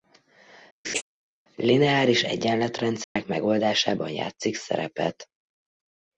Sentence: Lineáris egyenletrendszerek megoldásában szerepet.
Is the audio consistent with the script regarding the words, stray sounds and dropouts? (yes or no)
no